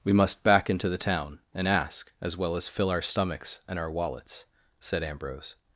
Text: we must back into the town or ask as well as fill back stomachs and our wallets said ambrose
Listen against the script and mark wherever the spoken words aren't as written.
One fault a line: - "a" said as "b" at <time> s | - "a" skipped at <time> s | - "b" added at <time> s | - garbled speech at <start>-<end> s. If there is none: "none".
- "or" said as "and" at 1.5 s
- "back" said as "our" at 2.9 s